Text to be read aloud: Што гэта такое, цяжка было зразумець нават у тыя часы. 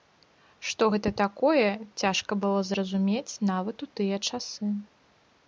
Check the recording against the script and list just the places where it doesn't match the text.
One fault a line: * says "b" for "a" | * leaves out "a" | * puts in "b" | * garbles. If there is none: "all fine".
all fine